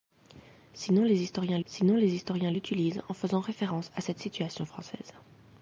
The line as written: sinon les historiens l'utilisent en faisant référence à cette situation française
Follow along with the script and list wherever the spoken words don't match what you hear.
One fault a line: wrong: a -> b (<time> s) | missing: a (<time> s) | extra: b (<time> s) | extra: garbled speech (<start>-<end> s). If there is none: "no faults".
extra: sinon les historiens (1.6 s)